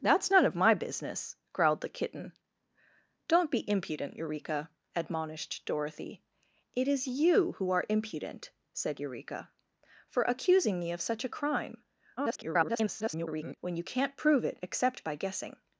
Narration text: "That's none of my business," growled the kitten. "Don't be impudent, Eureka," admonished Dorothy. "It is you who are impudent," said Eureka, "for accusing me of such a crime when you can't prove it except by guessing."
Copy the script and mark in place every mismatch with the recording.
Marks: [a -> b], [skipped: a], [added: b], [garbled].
"That's none of my business," growled the kitten. "Don't be impudent, Eureka," admonished Dorothy. "It is you who are impudent," said Eureka, "for accusing me of such a crime [garbled] when you can't prove it except by guessing."